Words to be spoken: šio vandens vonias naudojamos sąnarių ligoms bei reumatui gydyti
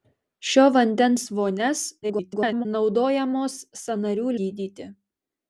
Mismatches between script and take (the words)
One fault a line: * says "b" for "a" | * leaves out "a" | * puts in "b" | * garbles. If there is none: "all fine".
* garbles
* leaves out "ligoms bei reumatui"